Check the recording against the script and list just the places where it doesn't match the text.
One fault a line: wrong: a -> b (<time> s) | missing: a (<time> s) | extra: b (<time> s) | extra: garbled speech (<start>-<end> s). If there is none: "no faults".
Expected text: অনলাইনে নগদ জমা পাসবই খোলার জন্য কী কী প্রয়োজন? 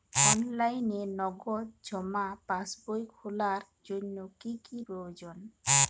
no faults